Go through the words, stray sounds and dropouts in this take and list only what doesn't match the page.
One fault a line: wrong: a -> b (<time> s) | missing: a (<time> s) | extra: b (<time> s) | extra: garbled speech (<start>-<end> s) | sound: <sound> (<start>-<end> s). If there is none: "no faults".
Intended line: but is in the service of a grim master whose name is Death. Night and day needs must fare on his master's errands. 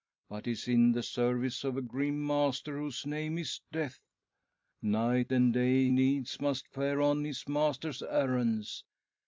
no faults